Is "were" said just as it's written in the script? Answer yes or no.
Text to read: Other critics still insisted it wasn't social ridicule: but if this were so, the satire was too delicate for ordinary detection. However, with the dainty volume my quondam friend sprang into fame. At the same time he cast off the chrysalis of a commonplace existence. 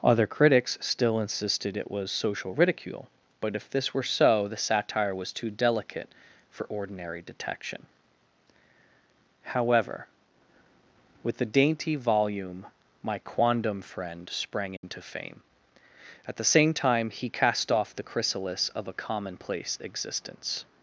yes